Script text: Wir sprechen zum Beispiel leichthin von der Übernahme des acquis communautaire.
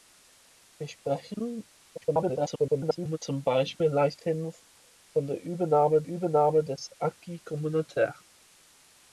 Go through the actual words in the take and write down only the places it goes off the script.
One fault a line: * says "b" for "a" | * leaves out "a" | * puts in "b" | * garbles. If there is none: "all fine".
* garbles
* puts in "Übernahme"